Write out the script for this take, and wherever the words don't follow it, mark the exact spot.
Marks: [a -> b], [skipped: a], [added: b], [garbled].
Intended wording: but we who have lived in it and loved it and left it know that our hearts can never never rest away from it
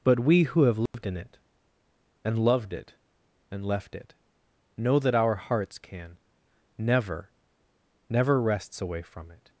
but we who have lived in it and loved it and left it know that our hearts can never never [rest -> rests] away from it